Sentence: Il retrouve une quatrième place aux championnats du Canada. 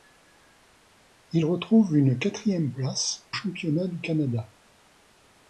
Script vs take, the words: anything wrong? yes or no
yes